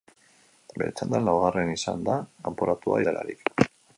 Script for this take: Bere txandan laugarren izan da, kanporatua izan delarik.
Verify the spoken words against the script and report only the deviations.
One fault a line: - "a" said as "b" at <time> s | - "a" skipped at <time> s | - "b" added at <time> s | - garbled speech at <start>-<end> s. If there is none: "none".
- "izan" skipped at 3.0 s